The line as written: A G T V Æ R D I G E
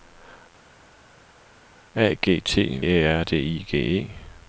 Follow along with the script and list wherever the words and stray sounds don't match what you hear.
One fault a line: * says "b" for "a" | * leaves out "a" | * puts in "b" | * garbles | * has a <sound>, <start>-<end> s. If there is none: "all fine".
* leaves out "V"